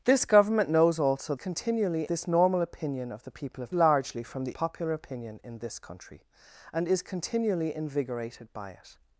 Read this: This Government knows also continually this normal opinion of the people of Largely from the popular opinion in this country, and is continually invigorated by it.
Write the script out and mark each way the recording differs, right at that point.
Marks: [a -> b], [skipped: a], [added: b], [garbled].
This Government knows also continually this normal opinion of the people of Largely from the popular opinion in this country, and is continually invigorated by it.